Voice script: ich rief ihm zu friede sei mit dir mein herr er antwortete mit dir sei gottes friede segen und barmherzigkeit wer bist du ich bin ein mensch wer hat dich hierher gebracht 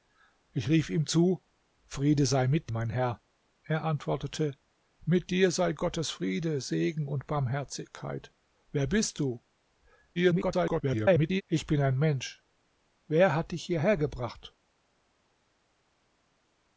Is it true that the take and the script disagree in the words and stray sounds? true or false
true